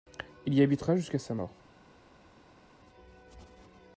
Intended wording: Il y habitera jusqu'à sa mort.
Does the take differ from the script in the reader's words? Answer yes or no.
no